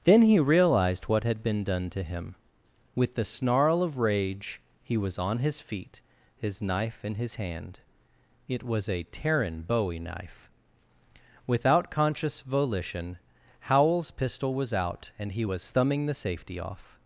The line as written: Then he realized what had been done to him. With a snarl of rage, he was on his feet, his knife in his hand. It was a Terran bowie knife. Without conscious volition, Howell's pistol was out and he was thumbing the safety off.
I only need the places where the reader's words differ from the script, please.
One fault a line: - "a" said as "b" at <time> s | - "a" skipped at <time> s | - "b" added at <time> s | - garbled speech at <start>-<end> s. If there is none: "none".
- "a" said as "the" at 3.1 s